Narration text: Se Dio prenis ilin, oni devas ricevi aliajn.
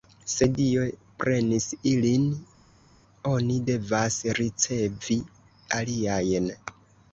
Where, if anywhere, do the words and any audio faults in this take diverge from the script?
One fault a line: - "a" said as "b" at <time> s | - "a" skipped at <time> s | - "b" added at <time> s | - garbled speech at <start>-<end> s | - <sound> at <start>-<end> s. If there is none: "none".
none